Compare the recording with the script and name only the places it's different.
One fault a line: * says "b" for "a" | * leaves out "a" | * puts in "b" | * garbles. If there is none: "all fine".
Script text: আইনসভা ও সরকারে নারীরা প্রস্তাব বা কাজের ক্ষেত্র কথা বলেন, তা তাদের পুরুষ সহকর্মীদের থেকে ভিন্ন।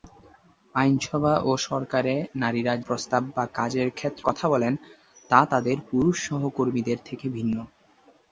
all fine